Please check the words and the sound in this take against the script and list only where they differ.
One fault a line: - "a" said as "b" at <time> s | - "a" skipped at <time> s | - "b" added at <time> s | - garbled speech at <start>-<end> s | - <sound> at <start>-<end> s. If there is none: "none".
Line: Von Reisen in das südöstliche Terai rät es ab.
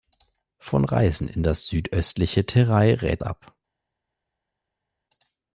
- "es" skipped at 3.2 s